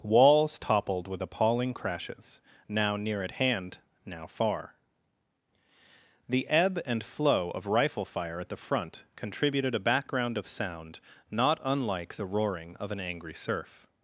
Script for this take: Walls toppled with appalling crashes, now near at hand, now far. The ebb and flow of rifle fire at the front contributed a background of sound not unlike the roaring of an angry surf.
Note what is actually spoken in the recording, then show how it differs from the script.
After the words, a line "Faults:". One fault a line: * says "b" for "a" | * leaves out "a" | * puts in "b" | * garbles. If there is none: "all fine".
Walls toppled with appalling crashes, now near at hand, now far. The ebb and flow of rifle fire at the front contributed a background of sound not unlike the roaring of an angry surf.
Faults:
all fine